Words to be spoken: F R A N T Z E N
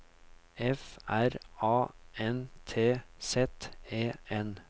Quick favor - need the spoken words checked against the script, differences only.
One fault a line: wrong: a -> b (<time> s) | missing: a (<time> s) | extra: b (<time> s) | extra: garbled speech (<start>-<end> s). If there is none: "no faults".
no faults